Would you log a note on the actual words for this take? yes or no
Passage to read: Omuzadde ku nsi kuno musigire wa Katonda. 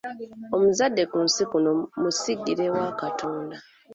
no